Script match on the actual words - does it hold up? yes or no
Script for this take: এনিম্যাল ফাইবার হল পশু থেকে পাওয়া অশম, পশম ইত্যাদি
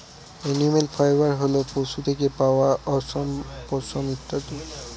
yes